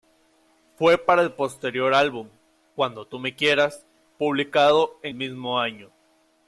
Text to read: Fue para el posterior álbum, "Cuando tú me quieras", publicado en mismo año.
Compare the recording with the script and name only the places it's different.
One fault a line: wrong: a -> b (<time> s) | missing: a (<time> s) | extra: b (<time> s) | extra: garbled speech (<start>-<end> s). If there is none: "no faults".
no faults